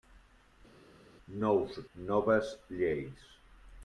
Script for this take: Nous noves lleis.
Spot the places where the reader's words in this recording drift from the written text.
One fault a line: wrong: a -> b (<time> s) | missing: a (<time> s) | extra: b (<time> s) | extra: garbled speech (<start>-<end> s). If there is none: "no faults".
no faults